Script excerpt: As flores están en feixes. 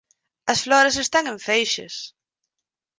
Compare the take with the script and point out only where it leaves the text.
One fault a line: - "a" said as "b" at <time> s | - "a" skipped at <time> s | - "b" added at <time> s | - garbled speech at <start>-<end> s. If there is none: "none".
none